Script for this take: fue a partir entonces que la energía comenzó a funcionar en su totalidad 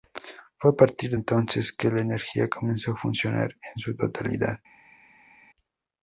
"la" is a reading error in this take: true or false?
false